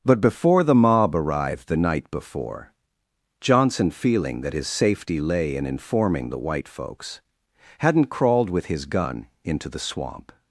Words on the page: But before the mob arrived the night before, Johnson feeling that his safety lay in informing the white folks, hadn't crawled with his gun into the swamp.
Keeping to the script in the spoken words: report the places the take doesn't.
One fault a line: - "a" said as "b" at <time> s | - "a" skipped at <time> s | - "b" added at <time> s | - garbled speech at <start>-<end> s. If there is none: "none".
none